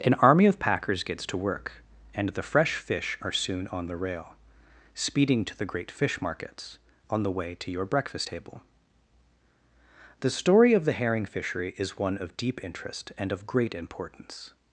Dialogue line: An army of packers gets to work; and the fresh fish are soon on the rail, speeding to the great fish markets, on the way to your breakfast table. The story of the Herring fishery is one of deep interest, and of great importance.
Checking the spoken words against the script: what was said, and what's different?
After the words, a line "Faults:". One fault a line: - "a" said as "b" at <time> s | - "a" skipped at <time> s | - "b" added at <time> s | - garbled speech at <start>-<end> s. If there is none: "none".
An army of packers gets to work; and the fresh fish are soon on the rail, speeding to the great fish markets, on the way to your breakfast table. The story of the Herring fishery is one of deep interest, and of great importance.
Faults:
none